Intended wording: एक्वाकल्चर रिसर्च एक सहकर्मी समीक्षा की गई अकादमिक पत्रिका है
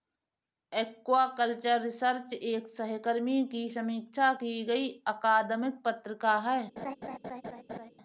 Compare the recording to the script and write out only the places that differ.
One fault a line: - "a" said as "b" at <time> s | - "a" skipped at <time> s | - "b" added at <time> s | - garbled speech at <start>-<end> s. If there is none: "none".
- "की" added at 3.5 s